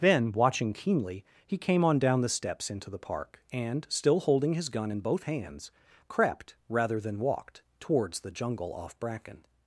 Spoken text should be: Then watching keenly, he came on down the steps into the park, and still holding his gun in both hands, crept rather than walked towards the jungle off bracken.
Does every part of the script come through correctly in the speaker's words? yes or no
yes